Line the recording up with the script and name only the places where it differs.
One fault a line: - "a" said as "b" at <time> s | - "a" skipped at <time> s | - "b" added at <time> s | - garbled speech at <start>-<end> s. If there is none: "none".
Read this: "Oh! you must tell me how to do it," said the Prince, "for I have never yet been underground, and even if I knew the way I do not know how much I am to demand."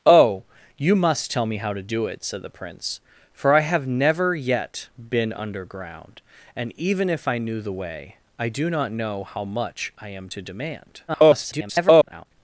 - garbled speech at 11.1-12.3 s